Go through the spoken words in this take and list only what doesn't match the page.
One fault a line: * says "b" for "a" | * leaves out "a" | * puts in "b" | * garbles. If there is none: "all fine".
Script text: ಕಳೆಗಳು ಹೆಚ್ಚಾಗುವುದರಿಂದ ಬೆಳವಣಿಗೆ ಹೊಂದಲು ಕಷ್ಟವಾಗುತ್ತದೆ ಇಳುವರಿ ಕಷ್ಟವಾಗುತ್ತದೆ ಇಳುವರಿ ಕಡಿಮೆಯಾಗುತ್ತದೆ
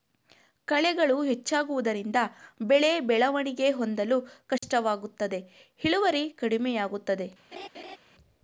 * puts in "ಬೆಳೆ"
* leaves out "ಕಷ್ಟವಾಗುತ್ತದೆ ಇಳುವರಿ"